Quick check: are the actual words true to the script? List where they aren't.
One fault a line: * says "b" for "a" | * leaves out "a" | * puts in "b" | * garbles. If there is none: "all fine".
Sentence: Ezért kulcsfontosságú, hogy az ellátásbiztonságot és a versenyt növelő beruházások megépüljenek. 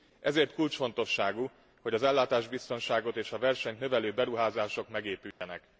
all fine